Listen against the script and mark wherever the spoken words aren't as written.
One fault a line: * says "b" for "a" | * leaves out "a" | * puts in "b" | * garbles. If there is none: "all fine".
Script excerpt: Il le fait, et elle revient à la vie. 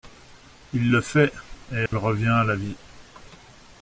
all fine